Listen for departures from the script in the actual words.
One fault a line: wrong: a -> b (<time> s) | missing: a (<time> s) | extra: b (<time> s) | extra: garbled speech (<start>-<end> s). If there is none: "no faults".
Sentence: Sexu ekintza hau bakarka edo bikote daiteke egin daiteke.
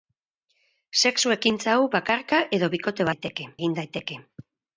no faults